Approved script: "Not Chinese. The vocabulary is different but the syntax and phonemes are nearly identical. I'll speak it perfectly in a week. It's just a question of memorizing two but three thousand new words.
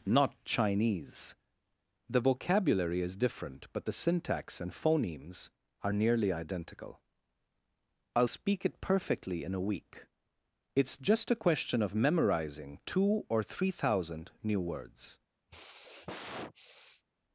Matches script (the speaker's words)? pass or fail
fail